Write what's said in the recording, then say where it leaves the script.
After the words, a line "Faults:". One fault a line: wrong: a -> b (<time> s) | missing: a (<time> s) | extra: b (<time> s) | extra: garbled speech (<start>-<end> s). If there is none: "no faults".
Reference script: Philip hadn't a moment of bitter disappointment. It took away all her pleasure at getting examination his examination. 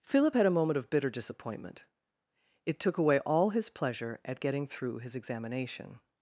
Philip had a moment of bitter disappointment. It took away all his pleasure at getting through his examination.
Faults:
wrong: hadn't -> had (0.3 s)
wrong: her -> his (3.5 s)
wrong: examination -> through (4.7 s)